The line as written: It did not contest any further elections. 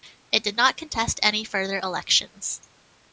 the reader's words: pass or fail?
pass